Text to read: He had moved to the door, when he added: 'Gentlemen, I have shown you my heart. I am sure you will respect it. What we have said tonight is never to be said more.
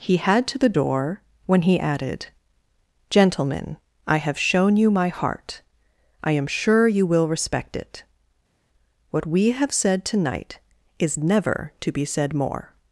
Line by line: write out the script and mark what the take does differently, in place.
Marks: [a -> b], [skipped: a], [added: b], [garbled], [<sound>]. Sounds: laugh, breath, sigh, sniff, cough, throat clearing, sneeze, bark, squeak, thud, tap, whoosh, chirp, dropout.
He had [skipped: moved] to the door, when he added: 'Gentlemen, I have shown you my heart. I am sure you will respect it. What we have said tonight is never to be said more.